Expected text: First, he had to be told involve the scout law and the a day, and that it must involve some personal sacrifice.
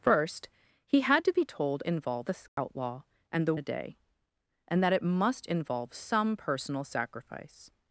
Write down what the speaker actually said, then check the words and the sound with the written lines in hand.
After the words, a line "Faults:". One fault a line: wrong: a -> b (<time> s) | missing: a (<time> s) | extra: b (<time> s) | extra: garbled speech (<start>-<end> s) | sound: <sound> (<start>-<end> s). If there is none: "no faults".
First, he had to be told involve the scout law and the a day, and that it must involve some personal sacrifice.
Faults:
sound: dropout (2.5-2.6 s)